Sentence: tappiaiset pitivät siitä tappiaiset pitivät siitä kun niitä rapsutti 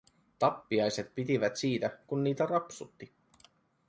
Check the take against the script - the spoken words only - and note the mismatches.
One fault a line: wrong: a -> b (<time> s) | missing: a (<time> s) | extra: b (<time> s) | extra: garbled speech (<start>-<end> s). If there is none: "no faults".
missing: tappiaiset pitivät siitä (2.0 s)